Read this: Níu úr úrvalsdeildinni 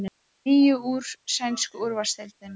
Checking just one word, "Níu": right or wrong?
right